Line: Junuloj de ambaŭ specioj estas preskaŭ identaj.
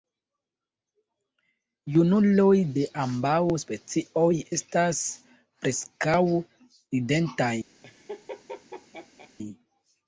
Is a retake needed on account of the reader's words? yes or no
no